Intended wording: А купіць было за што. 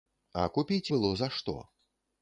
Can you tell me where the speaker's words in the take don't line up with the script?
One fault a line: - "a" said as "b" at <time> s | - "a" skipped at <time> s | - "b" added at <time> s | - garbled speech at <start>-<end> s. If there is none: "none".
none